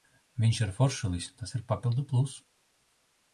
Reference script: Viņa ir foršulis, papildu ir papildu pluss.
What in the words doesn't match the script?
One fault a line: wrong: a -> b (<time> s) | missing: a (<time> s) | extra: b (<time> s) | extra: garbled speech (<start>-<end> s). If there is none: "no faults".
wrong: Viņa -> Viņš (0.4 s)
wrong: papildu -> tas (1.4 s)